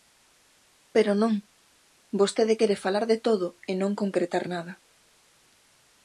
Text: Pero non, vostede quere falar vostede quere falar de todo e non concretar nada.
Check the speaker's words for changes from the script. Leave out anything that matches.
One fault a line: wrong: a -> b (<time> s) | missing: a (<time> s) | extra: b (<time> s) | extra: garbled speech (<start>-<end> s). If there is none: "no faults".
missing: vostede quere falar (3.0 s)